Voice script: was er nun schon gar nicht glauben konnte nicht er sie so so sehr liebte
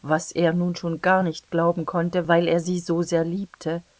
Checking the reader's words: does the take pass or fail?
fail